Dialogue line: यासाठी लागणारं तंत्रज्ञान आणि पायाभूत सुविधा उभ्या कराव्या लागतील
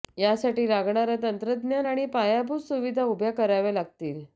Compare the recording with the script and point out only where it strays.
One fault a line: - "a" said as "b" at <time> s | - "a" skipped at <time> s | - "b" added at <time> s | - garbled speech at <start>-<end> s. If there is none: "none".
none